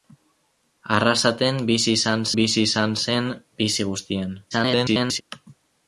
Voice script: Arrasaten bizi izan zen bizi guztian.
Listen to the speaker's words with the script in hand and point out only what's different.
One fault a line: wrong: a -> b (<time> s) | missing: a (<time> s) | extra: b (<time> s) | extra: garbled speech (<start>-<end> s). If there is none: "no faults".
extra: bizi izan (2.4 s)
extra: garbled speech (4.5-5.2 s)